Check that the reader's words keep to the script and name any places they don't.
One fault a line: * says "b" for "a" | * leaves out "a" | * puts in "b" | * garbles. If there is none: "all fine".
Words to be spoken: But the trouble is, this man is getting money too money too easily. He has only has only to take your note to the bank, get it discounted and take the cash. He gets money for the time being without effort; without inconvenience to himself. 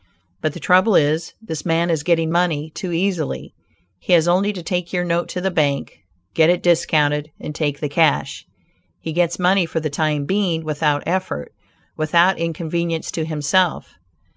* leaves out "money too"
* leaves out "has only"